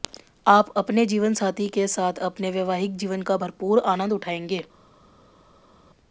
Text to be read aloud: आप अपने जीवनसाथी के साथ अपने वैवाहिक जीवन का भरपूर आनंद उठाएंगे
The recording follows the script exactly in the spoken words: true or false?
true